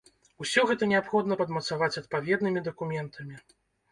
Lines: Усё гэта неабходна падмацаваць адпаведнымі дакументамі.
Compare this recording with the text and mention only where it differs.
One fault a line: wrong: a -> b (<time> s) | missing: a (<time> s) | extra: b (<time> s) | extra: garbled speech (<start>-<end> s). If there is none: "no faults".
no faults